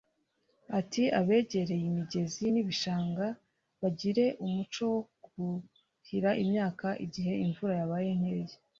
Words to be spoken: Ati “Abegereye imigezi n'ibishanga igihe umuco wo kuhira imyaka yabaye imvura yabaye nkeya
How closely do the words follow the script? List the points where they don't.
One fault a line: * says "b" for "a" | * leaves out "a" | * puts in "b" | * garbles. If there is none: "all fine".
* says "bagire" for "igihe"
* says "igihe" for "yabaye"